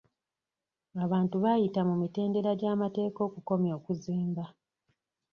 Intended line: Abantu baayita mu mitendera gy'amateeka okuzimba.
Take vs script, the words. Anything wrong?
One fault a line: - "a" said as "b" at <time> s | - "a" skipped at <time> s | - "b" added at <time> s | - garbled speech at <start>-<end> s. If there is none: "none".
- "okukomya" added at 3.3 s